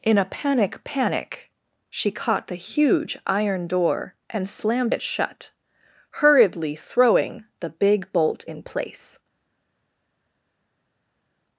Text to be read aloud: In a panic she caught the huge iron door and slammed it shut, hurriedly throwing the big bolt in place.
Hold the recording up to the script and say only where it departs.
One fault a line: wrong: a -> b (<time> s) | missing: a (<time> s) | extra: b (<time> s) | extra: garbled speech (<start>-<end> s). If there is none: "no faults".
extra: panic (0.8 s)